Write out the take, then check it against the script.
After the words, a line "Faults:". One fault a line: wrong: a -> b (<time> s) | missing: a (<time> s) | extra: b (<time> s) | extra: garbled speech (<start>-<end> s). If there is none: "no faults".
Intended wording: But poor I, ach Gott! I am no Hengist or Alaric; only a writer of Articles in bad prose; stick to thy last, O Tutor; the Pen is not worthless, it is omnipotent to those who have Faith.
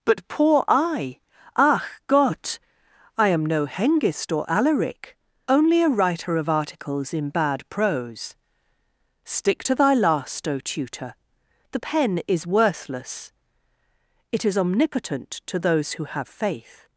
But poor I, ach Gott! I am no Hengist or Alaric; only a writer of Articles in bad prose; stick to thy last, O Tutor; the Pen is worthless, it is omnipotent to those who have Faith.
Faults:
missing: not (12.5 s)